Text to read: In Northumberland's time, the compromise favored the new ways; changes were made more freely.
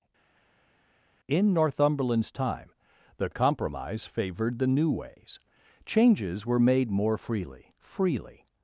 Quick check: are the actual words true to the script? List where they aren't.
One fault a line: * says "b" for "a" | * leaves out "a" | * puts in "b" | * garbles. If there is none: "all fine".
* puts in "freely"